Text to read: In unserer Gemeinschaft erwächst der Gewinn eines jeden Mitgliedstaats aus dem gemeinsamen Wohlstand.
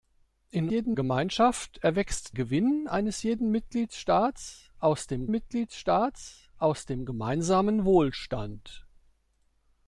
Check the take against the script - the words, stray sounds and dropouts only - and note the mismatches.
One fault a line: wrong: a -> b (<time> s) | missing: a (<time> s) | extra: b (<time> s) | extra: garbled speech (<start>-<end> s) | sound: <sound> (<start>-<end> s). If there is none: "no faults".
wrong: unserer -> jeden (0.7 s)
missing: der (2.4 s)
extra: Mitgliedstaats aus dem (5.3 s)